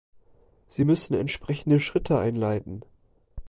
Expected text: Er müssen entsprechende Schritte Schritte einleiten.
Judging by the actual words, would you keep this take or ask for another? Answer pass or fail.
fail